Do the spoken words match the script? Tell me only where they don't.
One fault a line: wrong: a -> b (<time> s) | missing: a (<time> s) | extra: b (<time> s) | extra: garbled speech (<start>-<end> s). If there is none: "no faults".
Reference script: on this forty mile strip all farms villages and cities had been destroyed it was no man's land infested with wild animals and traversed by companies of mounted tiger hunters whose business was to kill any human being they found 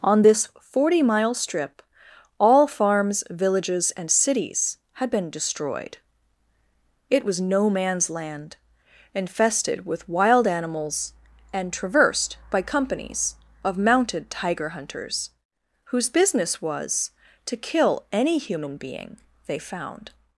no faults